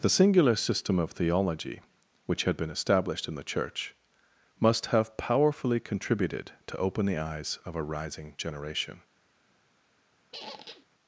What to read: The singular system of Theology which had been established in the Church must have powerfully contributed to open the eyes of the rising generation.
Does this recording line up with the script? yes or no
no